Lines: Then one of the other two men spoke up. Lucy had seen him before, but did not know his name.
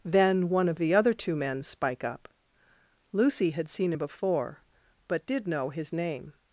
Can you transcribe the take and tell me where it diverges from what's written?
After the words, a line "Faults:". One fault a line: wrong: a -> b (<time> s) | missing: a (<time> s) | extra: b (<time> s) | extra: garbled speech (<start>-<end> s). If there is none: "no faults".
Then one of the other two men spike up. Lucy had seen him before, but did know his name.
Faults:
wrong: spoke -> spike (1.6 s)
missing: not (5.5 s)